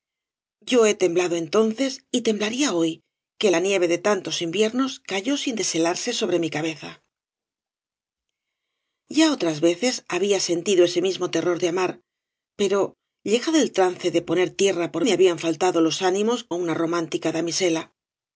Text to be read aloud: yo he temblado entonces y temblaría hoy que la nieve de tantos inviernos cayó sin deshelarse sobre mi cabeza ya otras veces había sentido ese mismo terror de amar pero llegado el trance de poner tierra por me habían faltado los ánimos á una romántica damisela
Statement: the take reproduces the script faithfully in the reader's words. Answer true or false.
true